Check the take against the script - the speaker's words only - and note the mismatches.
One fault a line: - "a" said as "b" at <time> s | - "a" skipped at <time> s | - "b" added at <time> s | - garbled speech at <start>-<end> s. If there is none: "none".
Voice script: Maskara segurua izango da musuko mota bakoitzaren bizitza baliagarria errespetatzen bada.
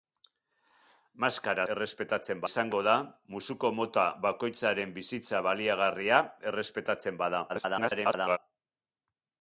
- "segurua" said as "errespetatzen" at 1.7 s
- garbled speech at 7.5-8.4 s